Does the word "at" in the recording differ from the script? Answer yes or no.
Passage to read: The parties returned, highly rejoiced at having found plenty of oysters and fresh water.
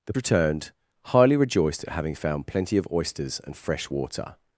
no